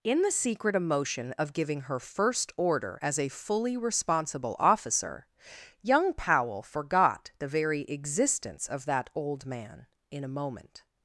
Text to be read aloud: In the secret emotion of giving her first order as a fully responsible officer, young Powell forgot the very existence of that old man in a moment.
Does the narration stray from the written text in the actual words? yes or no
no